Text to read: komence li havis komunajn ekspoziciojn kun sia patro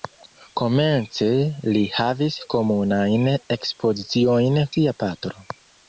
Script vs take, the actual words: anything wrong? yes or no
yes